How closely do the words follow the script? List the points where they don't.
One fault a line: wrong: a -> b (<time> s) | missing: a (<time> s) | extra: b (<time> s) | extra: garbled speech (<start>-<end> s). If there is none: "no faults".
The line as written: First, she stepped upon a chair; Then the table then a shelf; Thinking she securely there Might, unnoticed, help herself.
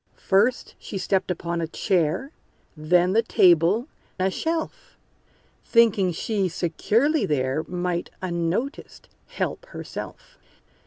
missing: then (3.9 s)